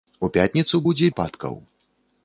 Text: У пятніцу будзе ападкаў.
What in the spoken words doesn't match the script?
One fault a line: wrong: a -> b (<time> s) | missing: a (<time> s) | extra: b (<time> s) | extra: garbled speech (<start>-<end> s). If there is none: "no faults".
no faults